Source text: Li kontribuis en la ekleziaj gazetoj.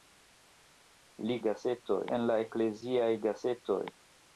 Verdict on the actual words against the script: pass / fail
fail